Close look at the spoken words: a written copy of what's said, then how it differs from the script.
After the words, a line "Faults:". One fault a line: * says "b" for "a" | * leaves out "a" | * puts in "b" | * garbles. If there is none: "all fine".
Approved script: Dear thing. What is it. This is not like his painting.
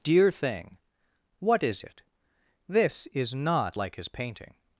Dear thing. What is it. This is not like his painting.
Faults:
all fine